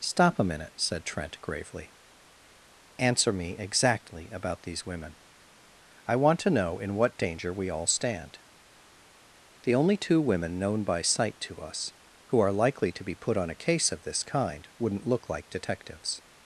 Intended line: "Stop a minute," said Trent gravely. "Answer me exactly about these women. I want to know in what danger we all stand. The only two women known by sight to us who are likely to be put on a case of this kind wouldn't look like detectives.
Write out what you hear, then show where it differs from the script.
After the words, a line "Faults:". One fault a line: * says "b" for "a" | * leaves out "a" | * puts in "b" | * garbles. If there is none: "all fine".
"Stop a minute," said Trent gravely. "Answer me exactly about these women. I want to know in what danger we all stand. The only two women known by sight to us who are likely to be put on a case of this kind wouldn't look like detectives.
Faults:
all fine